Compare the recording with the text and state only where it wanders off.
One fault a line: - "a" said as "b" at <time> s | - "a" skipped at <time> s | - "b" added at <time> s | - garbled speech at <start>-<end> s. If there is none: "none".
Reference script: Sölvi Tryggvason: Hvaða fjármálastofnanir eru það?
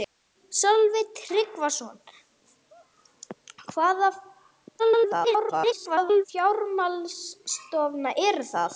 - garbled speech at 4.8-6.3 s